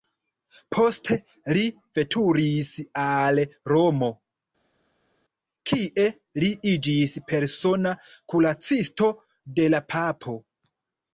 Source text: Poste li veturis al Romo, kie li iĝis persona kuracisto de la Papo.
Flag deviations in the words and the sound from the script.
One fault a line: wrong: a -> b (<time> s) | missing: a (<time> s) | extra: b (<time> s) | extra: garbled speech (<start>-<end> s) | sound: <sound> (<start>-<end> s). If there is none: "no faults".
no faults